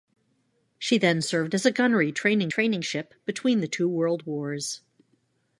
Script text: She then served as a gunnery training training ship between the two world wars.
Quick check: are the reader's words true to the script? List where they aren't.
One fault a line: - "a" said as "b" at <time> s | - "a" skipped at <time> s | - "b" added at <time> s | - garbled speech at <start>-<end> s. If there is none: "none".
none